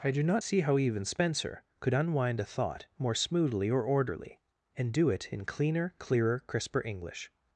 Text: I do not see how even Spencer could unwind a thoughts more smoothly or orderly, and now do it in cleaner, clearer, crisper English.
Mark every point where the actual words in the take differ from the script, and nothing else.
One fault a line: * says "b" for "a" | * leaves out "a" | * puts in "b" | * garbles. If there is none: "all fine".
* says "thought" for "thoughts"
* leaves out "now"